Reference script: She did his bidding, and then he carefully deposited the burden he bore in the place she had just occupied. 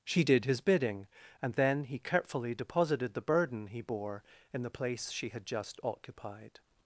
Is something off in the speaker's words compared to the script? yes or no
no